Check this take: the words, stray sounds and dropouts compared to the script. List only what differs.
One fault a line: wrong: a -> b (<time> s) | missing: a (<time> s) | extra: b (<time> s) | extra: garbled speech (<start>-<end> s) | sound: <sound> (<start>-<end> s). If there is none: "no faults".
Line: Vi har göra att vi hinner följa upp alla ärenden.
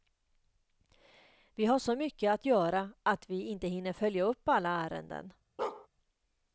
extra: så mycket att (1.8 s)
extra: inte (3.4 s)
sound: bark (5.6-5.9 s)